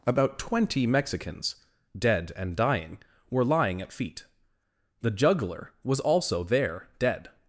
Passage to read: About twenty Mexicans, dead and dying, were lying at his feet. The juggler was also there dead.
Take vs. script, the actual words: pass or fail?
fail